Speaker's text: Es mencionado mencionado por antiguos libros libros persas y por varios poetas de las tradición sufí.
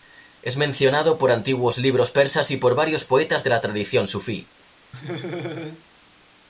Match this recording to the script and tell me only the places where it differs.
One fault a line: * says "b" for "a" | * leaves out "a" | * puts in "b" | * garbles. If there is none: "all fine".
* leaves out "mencionado"
* leaves out "libros"
* says "la" for "las"